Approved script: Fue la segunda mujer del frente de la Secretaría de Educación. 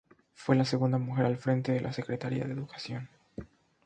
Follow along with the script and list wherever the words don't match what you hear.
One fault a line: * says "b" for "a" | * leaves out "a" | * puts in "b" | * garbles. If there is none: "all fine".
* says "al" for "del"